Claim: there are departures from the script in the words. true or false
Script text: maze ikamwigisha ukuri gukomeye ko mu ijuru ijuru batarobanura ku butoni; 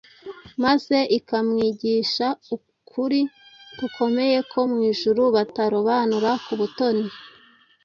true